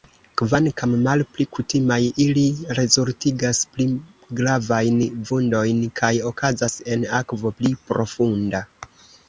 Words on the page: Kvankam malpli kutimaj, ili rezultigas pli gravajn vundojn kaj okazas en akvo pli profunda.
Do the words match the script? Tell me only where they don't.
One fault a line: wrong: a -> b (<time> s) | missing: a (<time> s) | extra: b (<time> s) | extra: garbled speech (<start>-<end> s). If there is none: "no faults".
no faults